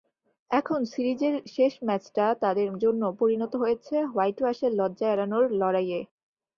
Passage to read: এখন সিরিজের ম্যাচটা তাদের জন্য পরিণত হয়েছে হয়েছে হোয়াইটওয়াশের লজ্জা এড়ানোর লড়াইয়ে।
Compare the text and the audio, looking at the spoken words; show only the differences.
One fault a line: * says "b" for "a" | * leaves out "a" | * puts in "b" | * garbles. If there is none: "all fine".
* puts in "শেষ"
* leaves out "হয়েছে"